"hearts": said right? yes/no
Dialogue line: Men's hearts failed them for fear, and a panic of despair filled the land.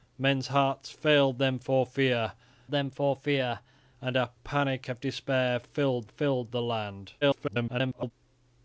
yes